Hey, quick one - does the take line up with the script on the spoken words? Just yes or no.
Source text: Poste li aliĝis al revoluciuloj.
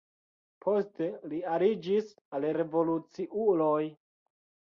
yes